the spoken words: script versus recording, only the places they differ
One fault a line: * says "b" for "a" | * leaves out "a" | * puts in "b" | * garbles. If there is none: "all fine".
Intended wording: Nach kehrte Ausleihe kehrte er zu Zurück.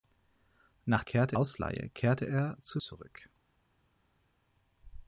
all fine